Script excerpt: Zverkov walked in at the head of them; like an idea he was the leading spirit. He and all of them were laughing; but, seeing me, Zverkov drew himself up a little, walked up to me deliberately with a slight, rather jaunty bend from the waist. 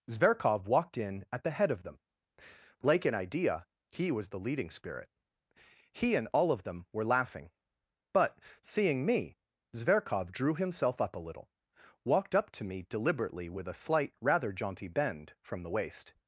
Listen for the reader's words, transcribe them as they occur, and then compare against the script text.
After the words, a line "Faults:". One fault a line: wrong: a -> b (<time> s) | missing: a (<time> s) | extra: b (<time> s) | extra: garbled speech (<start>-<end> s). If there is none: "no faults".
Zverkov walked in at the head of them; like an idea he was the leading spirit. He and all of them were laughing; but, seeing me, Zverkov drew himself up a little, walked up to me deliberately with a slight, rather jaunty bend from the waist.
Faults:
no faults